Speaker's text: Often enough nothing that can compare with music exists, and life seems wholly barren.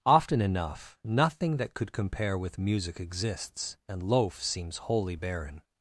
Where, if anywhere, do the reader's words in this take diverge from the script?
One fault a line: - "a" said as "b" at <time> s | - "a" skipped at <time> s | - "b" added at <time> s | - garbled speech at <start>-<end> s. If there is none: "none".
- "can" said as "could" at 1.7 s
- "life" said as "loaf" at 4.0 s